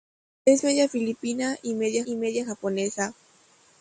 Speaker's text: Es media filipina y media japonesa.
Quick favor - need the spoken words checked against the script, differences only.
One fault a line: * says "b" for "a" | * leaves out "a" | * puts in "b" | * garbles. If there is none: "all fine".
* puts in "y media"